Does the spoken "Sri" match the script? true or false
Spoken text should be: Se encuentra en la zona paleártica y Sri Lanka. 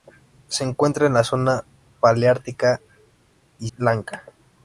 false